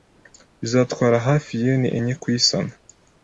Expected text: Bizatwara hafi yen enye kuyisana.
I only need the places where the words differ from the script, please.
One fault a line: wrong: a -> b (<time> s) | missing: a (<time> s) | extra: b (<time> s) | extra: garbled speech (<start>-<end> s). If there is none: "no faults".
no faults